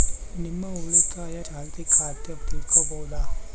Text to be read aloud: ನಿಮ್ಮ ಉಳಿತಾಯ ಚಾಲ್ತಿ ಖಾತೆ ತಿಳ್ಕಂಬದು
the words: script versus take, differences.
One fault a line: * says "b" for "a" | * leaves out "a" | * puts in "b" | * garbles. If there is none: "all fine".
all fine